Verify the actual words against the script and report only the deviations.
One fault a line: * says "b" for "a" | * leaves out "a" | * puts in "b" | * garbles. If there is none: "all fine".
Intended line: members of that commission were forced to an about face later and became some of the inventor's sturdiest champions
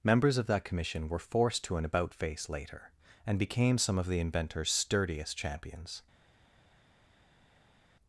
all fine